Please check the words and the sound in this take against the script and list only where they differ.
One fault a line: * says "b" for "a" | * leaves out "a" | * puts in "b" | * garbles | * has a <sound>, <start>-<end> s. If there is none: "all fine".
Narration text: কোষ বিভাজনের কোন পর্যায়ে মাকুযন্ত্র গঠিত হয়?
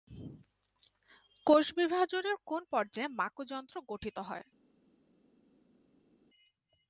all fine